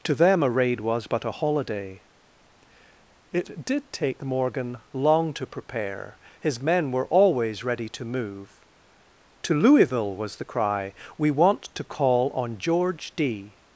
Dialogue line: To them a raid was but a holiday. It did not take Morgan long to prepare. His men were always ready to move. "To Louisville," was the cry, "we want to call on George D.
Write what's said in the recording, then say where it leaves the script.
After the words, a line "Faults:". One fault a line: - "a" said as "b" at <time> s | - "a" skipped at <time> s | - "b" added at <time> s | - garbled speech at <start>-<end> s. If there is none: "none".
To them a raid was but a holiday. It did take Morgan long to prepare. His men were always ready to move. "To Louisville," was the cry, "we want to call on George D.
Faults:
- "not" skipped at 3.9 s